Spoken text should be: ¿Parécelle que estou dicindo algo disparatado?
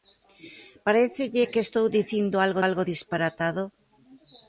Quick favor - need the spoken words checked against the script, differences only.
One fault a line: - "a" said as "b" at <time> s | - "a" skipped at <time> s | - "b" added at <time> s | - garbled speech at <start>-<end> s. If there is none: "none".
- "algo" added at 2.7 s